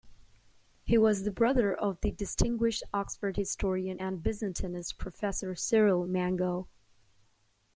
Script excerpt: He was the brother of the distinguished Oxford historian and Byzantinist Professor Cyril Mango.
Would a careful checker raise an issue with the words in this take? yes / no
no